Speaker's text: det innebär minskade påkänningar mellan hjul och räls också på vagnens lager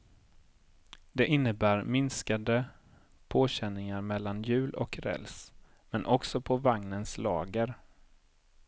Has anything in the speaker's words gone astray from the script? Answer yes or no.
yes